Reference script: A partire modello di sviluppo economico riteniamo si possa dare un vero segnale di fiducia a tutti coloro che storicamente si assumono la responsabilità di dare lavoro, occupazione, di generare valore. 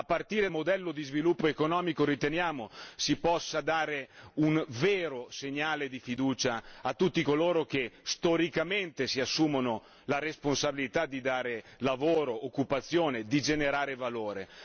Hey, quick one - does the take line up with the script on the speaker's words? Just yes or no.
yes